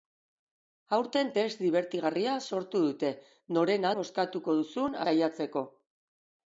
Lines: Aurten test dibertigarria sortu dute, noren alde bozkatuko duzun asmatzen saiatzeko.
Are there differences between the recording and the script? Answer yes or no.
yes